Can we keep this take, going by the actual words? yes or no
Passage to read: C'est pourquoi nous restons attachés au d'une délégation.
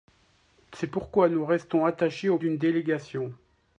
yes